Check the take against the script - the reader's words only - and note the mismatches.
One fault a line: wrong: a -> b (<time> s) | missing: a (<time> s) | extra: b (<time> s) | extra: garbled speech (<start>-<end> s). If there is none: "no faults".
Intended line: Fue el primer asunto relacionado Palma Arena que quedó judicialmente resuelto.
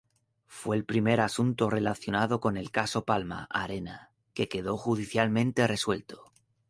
extra: con el caso (2.4 s)